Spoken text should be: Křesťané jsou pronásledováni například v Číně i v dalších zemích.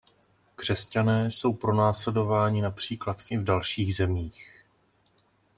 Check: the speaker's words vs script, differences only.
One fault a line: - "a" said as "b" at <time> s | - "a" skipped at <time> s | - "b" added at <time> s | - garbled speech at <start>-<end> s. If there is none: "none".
- "Číně" skipped at 3.3 s